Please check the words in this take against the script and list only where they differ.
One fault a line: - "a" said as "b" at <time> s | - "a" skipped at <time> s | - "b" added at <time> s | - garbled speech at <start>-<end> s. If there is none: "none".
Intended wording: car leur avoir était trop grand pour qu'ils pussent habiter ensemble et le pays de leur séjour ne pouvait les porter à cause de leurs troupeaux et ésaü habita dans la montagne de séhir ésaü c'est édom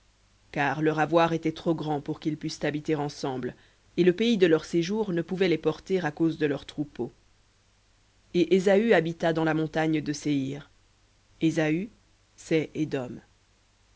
none